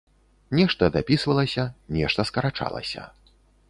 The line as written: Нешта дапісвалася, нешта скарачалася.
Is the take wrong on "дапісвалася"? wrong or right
right